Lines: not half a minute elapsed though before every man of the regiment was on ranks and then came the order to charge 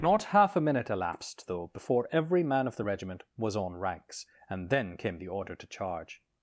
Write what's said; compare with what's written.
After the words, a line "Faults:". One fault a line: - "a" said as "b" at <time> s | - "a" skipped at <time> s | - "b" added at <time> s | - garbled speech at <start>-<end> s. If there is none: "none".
not half a minute elapsed though before every man of the regiment was on ranks and then came the order to charge
Faults:
none